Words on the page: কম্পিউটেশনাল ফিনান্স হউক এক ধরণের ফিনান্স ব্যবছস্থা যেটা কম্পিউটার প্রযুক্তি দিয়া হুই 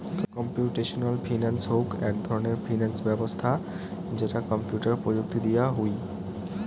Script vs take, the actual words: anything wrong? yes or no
no